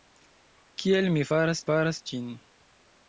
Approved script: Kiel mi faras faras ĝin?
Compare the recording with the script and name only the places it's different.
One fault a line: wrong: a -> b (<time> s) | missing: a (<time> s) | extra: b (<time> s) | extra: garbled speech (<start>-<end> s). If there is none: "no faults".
no faults